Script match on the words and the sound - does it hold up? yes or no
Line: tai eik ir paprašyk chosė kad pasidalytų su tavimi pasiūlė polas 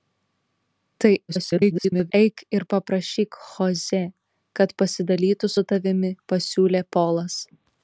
no